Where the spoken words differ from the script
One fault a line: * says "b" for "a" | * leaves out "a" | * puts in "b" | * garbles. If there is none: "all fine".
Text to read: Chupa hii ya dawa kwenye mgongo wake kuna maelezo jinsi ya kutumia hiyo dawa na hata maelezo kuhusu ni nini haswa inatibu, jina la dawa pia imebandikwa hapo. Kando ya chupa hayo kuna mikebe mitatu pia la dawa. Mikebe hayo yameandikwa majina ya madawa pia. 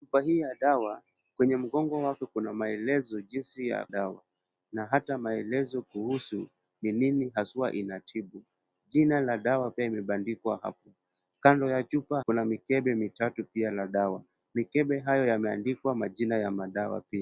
* leaves out "kutumia hiyo"
* leaves out "hayo"